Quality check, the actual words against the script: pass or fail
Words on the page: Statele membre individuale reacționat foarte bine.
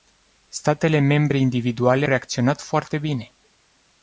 pass